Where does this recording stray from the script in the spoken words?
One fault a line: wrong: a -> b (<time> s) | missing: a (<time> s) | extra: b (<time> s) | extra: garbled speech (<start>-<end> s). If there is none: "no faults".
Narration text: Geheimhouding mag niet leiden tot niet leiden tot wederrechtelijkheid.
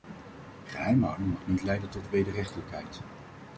missing: niet leiden tot (2.1 s)